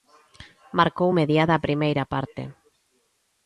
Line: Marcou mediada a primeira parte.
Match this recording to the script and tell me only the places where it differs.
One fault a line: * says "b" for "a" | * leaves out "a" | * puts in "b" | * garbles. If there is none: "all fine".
all fine